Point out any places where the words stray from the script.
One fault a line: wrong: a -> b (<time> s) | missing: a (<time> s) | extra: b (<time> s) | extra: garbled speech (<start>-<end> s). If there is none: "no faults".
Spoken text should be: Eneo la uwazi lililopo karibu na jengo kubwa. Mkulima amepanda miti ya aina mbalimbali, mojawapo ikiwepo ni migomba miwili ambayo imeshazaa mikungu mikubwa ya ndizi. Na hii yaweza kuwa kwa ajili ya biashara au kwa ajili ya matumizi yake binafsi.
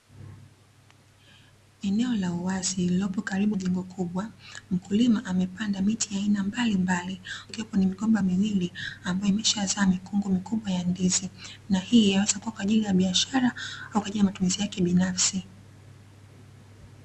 missing: na (3.6 s)
missing: mojawapo (7.2 s)